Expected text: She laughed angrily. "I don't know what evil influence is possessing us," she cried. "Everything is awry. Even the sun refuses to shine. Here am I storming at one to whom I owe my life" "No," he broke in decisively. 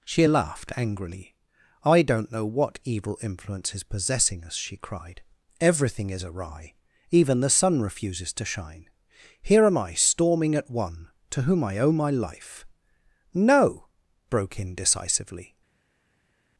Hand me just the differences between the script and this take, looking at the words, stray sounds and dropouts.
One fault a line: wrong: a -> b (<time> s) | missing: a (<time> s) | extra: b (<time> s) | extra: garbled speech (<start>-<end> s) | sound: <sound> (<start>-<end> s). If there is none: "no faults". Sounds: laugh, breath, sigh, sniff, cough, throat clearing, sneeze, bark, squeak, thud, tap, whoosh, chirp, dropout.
missing: he (13.9 s)